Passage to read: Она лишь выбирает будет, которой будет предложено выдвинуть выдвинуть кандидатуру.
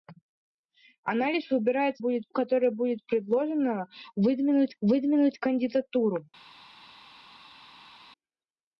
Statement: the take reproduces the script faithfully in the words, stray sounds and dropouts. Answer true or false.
true